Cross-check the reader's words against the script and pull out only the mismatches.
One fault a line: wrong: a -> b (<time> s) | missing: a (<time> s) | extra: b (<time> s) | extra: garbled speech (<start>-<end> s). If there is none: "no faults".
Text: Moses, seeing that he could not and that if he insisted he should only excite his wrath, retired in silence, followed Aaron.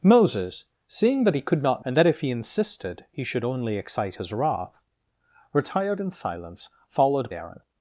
no faults